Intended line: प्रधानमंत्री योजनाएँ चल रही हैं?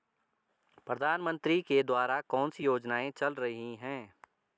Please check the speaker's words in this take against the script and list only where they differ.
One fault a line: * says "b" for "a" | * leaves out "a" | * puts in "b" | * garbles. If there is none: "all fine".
* puts in "के द्वारा कौनसी"